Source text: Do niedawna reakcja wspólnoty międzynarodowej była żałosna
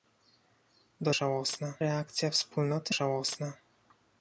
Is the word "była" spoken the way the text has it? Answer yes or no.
no